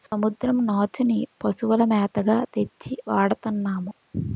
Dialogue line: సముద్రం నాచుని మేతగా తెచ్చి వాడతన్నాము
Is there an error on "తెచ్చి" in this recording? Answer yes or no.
no